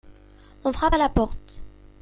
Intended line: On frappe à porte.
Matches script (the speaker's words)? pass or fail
fail